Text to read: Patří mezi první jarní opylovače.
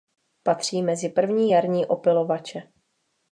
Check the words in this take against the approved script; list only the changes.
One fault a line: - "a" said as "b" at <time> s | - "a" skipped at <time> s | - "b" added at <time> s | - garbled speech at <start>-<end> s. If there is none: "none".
none